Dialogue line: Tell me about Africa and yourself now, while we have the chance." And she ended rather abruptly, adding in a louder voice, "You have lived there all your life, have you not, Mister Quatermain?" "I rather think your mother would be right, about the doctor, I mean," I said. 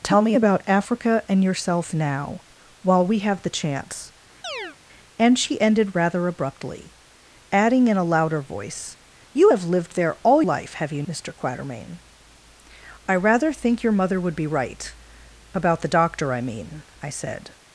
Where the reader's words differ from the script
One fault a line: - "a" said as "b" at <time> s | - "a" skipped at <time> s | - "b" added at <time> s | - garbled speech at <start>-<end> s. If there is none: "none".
- "your" skipped at 10.4 s
- "not" skipped at 11.0 s